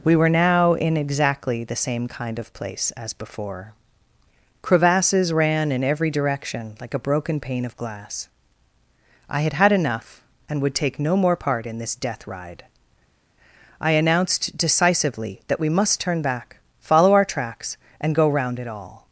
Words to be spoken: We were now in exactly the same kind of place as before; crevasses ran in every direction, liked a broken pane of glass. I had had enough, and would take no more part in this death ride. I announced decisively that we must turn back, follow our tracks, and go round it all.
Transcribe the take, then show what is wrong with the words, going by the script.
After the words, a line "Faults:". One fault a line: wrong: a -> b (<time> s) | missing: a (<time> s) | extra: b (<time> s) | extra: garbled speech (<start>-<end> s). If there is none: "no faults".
We were now in exactly the same kind of place as before; crevasses ran in every direction, like a broken pane of glass. I had had enough, and would take no more part in this death ride. I announced decisively that we must turn back, follow our tracks, and go round it all.
Faults:
wrong: liked -> like (6.8 s)